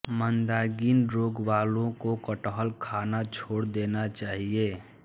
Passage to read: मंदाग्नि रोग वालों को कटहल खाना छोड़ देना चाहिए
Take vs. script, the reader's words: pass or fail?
pass